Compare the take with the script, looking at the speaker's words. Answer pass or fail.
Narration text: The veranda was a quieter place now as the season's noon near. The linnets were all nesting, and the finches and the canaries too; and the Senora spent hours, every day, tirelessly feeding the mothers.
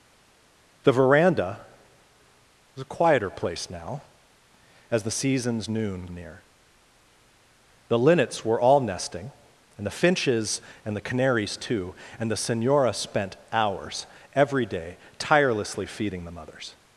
pass